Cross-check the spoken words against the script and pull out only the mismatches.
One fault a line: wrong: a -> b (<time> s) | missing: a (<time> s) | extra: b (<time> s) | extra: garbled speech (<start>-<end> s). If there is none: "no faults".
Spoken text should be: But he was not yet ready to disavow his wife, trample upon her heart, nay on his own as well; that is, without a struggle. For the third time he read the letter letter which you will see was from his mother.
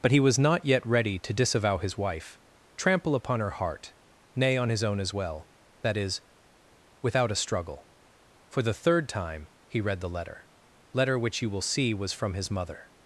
no faults